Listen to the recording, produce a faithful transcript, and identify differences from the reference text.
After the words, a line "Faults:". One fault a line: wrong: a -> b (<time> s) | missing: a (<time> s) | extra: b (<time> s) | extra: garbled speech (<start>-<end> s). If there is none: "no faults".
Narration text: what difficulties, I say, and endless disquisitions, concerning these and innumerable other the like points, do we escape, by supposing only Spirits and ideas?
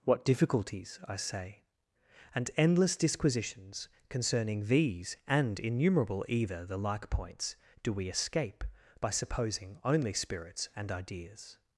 what difficulties, I say, and endless disquisitions, concerning these and innumerable either the like points, do we escape, by supposing only Spirits and ideas?
Faults:
wrong: other -> either (6.3 s)